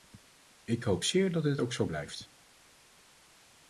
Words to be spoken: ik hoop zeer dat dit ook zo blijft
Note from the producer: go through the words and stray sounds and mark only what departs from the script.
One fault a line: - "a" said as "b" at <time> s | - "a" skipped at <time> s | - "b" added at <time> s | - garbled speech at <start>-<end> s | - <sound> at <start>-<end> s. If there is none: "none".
none